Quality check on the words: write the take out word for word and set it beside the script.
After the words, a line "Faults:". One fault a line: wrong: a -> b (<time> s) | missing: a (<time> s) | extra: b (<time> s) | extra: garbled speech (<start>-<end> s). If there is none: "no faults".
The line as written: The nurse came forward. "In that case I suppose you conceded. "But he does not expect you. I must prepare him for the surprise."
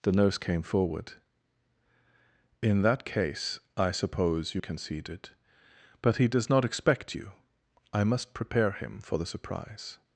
The nurse came forward. "In that case I suppose you conceded. "But he does not expect you. I must prepare him for the surprise."
Faults:
no faults